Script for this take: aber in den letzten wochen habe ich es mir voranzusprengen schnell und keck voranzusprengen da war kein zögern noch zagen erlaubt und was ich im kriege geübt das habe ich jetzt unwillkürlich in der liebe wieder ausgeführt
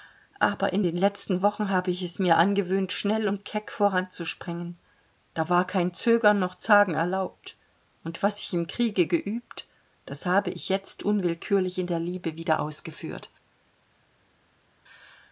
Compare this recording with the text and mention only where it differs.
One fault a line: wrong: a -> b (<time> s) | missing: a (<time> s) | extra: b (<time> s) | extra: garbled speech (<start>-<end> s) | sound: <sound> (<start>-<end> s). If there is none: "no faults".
wrong: voranzusprengen -> angewöhnt (2.4 s)